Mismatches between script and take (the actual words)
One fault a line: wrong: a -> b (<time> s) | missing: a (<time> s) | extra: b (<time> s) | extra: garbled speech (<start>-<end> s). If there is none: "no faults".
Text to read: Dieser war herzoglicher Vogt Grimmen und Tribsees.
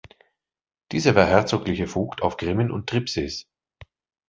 extra: auf (2.2 s)